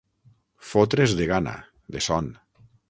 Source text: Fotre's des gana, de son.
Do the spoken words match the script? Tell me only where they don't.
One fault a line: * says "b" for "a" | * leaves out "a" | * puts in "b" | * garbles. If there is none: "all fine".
* says "de" for "des"